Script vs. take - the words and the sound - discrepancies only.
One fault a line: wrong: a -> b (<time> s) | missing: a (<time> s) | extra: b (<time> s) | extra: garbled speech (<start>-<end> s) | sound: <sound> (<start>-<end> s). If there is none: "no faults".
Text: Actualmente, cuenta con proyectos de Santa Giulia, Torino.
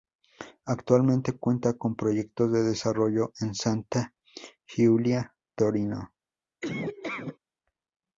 extra: desarrollo en (2.6 s)
sound: laugh (6.6-7.4 s)